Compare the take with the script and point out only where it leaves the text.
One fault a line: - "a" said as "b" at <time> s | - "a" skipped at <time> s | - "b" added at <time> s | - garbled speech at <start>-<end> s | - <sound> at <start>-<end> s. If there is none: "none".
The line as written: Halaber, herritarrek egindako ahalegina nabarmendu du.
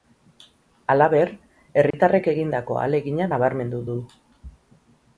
- dropout at 1.9-1.9 s